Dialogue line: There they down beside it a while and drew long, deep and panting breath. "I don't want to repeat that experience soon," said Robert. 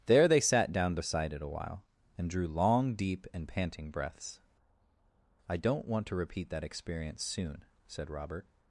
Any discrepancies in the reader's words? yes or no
yes